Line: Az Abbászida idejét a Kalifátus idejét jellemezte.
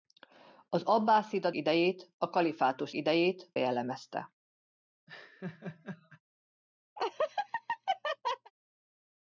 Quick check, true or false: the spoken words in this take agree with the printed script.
true